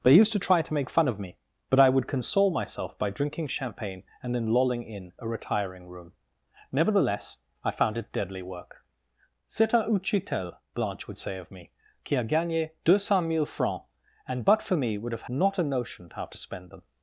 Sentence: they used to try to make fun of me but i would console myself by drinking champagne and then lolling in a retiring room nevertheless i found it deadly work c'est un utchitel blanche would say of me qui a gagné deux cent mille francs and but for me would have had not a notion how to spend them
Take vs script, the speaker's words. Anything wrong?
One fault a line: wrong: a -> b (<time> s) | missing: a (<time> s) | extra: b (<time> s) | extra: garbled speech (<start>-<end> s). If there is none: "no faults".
missing: had (15.3 s)